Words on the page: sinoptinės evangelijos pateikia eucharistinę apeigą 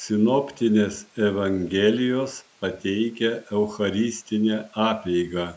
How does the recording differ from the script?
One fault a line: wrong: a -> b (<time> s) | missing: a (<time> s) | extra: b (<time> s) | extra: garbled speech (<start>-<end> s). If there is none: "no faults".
no faults